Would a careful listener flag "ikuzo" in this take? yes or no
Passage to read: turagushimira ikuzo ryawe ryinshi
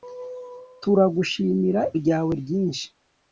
yes